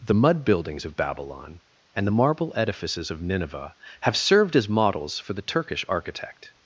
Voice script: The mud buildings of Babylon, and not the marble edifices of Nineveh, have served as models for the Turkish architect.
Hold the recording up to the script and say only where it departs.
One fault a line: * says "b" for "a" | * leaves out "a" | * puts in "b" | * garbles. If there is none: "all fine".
* leaves out "not"